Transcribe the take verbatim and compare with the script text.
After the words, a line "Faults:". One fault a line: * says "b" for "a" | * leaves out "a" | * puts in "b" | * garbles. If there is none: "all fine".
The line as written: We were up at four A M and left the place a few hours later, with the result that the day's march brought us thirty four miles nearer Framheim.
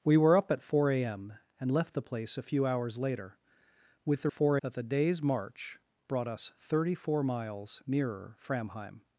We were up at four A M and left the place a few hours later, with the four that the day's march brought us thirty four miles nearer Framheim.
Faults:
* says "four" for "result"